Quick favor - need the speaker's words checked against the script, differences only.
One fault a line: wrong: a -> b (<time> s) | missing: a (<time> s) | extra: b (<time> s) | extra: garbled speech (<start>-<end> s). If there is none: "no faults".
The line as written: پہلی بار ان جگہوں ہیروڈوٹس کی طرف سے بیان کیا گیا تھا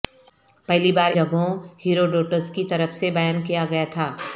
missing: ان (1.1 s)